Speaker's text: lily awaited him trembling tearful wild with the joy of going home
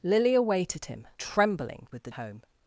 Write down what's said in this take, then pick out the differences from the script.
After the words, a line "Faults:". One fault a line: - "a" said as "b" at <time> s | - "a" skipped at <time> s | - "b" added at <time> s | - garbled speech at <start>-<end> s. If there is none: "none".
lily awaited him trembling with the home
Faults:
- "tearful wild" skipped at 1.9 s
- "joy of going" skipped at 2.1 s